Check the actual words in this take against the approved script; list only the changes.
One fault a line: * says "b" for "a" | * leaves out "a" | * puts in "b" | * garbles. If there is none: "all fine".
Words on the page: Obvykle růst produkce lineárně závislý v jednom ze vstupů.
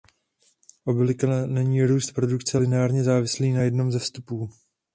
* puts in "není"
* says "na" for "v"